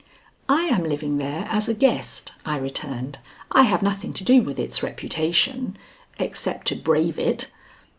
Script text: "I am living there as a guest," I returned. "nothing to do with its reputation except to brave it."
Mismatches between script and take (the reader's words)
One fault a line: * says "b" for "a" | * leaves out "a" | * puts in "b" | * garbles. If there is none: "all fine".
* puts in "I have"